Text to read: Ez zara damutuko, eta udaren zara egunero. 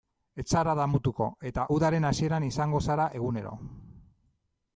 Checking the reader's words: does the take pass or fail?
fail